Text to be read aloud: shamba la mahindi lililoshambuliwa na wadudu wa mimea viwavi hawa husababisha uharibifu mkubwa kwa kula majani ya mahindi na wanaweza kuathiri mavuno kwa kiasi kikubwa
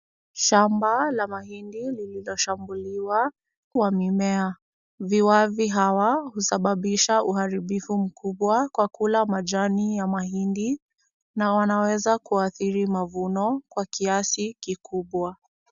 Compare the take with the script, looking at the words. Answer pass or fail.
fail